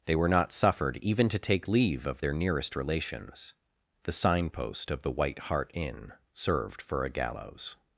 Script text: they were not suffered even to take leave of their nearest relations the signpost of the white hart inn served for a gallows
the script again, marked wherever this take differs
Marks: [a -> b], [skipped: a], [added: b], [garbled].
they were not suffered even to take leave of their nearest relations the signpost of the white hart inn served for a gallows